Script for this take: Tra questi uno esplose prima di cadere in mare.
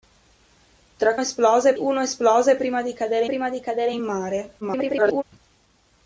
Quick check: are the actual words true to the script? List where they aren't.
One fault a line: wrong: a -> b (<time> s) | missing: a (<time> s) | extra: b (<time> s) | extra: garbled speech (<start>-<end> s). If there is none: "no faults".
wrong: questi -> esplose (1.2 s)
extra: prima di cadere (3.2 s)
extra: garbled speech (4.6-5.2 s)